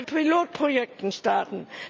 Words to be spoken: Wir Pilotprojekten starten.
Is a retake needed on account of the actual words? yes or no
no